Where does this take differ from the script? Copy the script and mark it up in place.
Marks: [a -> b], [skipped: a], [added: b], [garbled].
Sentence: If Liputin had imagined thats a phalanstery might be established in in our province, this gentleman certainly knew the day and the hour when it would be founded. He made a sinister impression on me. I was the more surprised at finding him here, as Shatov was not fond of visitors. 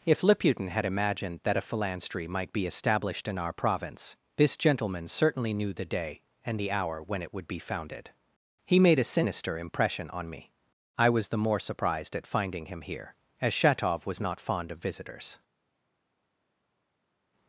If Liputin had imagined [thats -> that] a phalanstery might be established in [skipped: in] our province, this gentleman certainly knew the day and the hour when it would be founded. He made a sinister impression on me. I was the more surprised at finding him here, as Shatov was not fond of visitors.